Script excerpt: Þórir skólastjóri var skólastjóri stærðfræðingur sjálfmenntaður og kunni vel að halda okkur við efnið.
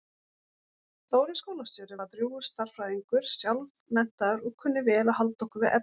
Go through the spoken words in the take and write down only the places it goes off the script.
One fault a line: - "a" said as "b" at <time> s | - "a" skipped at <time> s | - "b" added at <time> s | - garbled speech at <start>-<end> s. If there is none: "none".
- "skólastjóri" said as "drjúgur" at 2.2 s